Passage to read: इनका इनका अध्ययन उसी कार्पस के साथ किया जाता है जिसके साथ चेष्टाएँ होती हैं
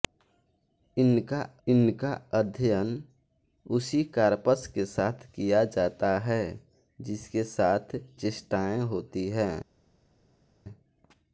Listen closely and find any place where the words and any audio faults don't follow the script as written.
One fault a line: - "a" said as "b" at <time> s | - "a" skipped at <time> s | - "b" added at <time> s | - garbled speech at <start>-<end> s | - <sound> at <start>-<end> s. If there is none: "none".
none